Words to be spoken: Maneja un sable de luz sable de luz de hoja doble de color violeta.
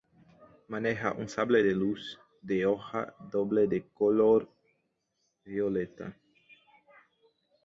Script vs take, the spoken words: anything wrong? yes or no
yes